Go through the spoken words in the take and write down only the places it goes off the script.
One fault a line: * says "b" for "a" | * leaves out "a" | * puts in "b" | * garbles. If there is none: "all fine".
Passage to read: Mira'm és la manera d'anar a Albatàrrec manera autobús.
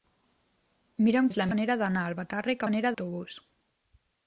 all fine